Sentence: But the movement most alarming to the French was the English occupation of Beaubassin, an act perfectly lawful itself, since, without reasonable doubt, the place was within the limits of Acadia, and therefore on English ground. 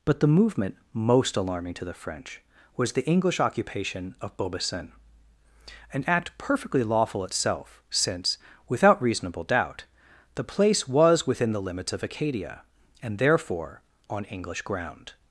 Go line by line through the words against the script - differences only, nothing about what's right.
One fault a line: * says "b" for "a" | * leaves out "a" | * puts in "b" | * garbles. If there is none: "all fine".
all fine